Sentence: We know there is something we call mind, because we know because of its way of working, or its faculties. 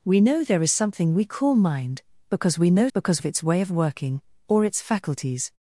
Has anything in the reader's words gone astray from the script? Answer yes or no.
no